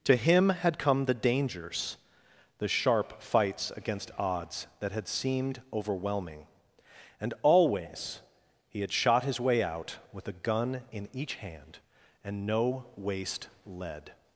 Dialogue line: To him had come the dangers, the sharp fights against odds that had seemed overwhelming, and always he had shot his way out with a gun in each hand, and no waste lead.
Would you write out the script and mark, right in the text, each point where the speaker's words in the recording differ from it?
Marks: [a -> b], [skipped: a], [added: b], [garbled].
To him had come the dangers, the sharp fights against odds that had seemed overwhelming, and always he had shot his way out with a gun in each hand, and no waste lead.